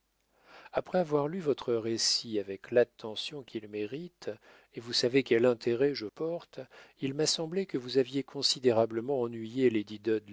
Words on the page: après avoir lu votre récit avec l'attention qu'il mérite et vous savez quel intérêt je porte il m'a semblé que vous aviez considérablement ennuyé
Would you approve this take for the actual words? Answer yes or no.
yes